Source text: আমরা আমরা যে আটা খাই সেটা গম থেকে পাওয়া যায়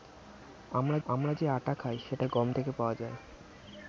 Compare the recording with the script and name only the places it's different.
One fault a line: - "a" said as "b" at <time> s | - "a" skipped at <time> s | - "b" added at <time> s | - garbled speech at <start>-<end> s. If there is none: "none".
none